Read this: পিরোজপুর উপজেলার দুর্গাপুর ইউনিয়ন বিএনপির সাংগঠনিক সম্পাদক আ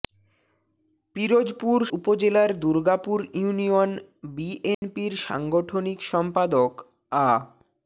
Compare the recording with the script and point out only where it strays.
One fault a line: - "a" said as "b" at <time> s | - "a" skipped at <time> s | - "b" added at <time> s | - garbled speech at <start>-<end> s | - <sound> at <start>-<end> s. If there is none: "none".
- dropout at 4.7-4.8 s